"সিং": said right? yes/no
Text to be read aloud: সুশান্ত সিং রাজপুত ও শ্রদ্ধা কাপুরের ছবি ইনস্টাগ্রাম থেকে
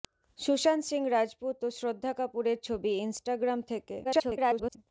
yes